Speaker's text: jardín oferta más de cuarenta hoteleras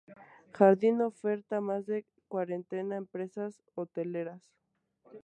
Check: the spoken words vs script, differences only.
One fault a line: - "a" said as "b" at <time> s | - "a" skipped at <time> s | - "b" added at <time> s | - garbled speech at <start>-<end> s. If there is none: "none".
- "empresas" added at 2.8 s